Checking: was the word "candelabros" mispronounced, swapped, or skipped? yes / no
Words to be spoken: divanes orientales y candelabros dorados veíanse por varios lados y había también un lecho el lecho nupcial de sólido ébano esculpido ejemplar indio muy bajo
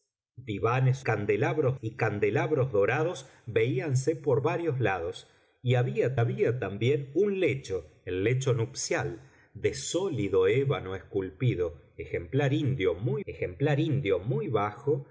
no